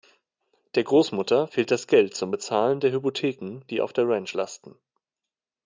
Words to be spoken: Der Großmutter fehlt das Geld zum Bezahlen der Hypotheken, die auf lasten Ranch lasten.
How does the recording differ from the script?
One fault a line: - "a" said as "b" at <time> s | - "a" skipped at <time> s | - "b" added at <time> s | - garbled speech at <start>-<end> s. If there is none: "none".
- "lasten" said as "der" at 3.9 s